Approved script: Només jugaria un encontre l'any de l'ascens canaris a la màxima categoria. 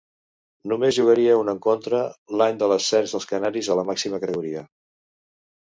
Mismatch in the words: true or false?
true